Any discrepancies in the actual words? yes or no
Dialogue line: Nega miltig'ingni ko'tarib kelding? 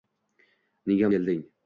yes